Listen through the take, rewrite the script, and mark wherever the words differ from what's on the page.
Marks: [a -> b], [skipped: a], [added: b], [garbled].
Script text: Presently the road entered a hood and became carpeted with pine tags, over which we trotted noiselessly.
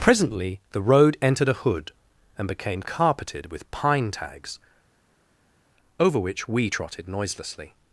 Presently the road entered a hood and became carpeted with pine tags, over which we trotted noiselessly.